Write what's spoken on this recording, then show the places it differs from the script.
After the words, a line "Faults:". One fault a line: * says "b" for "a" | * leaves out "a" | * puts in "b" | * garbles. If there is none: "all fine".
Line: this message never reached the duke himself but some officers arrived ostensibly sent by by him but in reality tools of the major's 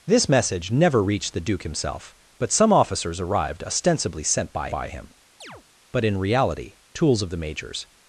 this message never reached the duke himself but some officers arrived ostensibly sent by by him but in reality tools of the major's
Faults:
all fine